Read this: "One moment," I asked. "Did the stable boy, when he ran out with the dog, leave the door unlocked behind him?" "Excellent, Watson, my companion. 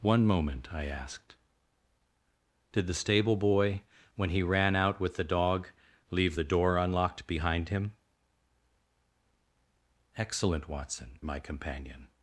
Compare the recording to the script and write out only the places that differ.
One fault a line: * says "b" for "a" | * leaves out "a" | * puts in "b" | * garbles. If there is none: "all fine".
all fine